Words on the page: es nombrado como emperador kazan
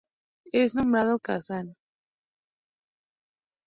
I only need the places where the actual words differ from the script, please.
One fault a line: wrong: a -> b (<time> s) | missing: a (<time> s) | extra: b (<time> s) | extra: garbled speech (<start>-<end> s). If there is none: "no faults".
missing: como emperador (1.2 s)